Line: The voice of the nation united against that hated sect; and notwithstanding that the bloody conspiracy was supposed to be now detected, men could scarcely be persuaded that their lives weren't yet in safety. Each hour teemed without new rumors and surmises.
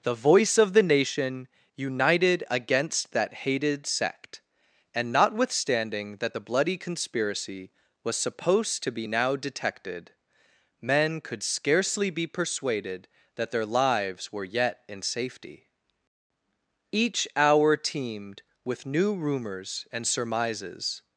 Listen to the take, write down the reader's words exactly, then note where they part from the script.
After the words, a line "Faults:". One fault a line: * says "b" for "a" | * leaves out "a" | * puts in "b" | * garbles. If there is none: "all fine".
The voice of the nation united against that hated sect; and notwithstanding that the bloody conspiracy was supposed to be now detected, men could scarcely be persuaded that their lives were yet in safety. Each hour teemed with new rumors and surmises.
Faults:
* says "were" for "weren't"
* says "with" for "without"